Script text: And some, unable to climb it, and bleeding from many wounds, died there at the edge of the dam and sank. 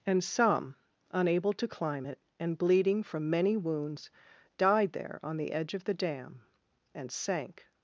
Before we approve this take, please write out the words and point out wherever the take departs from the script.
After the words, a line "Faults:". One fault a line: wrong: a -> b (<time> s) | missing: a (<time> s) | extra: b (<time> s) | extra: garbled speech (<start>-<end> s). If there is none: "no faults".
And some, unable to climb it, and bleeding from many wounds, died there on the edge of the dam and sank.
Faults:
wrong: at -> on (5.2 s)